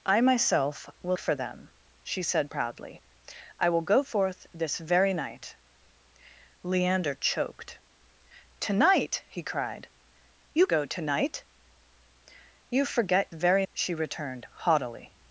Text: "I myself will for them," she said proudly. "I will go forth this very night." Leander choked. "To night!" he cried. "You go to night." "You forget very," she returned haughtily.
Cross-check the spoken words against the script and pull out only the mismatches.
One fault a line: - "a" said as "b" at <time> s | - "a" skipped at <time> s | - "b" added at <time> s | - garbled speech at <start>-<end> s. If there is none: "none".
none